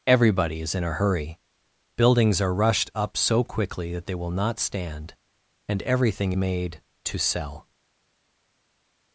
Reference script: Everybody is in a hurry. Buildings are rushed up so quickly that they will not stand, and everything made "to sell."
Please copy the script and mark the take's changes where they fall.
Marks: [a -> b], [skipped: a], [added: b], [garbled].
Everybody is in a hurry. Buildings are rushed up so quickly that they will not stand, and everything made "to sell."